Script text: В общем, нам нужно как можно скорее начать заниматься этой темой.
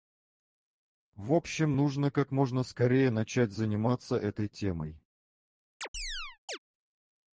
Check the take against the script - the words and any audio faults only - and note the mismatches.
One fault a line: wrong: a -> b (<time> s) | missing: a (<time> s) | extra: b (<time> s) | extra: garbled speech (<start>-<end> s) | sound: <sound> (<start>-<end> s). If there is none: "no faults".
missing: нам (1.8 s)
sound: chirp (5.8-6.6 s)